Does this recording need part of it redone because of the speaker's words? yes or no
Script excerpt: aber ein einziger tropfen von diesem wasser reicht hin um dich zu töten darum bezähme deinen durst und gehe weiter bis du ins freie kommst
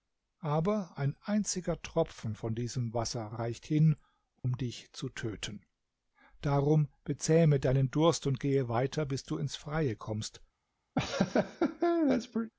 no